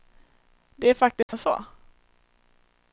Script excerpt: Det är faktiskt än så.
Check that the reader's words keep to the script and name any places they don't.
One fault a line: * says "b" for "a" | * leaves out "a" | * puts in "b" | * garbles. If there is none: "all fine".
all fine